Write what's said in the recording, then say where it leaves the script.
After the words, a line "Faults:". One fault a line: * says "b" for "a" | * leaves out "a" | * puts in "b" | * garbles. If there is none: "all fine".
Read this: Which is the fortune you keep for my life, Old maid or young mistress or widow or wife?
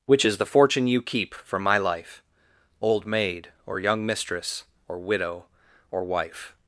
Which is the fortune you keep for my life, Old maid or young mistress or widow or wife?
Faults:
all fine